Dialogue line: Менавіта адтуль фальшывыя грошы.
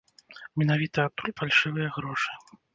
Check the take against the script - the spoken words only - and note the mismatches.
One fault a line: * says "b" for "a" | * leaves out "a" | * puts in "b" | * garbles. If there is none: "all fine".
all fine